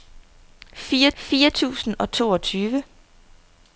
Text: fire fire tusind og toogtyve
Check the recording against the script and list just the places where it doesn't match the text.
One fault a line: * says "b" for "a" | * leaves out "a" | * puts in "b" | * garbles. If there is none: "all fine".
all fine